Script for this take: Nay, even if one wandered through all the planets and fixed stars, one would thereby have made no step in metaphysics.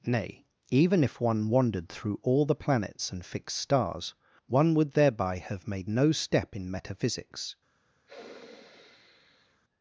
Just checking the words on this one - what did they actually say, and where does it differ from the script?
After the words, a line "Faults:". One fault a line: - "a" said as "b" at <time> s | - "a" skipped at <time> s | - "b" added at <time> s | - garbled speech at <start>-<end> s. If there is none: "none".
Nay, even if one wandered through all the planets and fixed stars, one would thereby have made no step in metaphysics.
Faults:
none